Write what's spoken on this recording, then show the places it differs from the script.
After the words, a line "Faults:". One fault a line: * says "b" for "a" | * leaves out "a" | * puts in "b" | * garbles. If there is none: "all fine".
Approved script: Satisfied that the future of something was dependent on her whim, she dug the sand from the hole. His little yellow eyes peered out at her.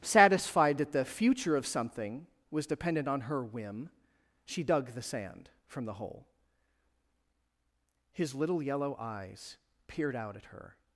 Satisfied that the future of something was dependent on her whim, she dug the sand from the hole. His little yellow eyes peered out at her.
Faults:
all fine